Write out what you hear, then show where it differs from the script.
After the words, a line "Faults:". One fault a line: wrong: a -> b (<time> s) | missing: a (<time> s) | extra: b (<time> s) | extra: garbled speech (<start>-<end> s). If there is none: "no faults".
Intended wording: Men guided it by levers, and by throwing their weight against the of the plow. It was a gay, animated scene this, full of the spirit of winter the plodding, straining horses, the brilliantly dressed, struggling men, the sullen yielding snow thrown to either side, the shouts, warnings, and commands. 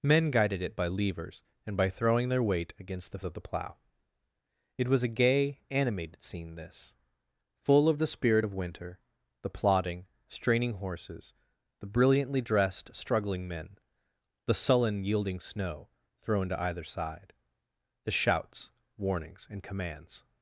Men guided it by levers, and by throwing their weight against the of the plow. It was a gay, animated scene this, full of the spirit of winter the plodding, straining horses, the brilliantly dressed, struggling men, the sullen yielding snow thrown to either side, the shouts, warnings, and commands.
Faults:
no faults